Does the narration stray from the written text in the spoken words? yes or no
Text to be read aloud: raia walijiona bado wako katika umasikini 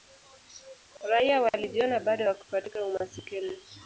no